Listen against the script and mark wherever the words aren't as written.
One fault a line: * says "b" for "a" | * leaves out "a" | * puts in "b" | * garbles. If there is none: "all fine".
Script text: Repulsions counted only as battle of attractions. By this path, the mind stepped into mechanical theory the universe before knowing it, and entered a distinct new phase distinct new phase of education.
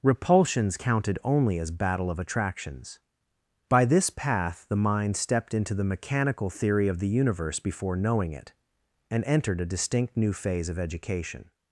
* puts in "the"
* puts in "of"
* leaves out "distinct new phase"